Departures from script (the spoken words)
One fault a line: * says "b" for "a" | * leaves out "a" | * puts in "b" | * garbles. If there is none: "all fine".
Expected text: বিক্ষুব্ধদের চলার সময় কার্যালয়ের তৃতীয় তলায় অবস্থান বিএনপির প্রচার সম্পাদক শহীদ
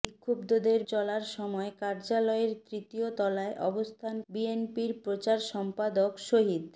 all fine